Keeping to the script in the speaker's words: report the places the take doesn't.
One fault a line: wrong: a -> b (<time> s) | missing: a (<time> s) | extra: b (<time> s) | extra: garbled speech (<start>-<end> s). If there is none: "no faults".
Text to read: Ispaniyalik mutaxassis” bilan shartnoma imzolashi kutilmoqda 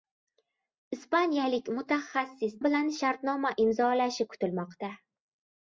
no faults